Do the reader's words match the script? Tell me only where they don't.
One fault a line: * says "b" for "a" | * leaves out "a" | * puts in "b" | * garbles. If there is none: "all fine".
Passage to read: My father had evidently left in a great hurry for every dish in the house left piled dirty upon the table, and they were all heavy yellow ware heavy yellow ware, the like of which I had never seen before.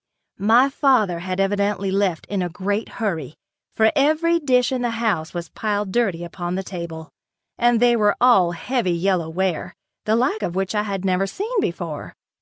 * says "was" for "left"
* leaves out "heavy yellow ware"